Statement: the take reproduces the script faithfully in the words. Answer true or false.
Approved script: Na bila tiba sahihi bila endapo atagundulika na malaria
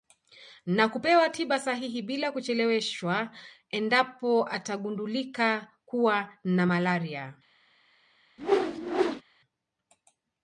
false